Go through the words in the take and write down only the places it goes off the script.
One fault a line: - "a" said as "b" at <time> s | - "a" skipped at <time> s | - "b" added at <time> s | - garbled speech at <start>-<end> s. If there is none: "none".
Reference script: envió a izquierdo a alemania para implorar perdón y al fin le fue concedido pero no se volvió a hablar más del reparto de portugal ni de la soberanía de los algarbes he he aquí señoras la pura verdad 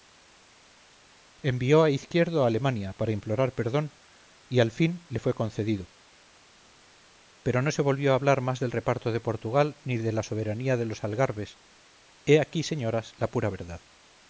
- "he" skipped at 12.4 s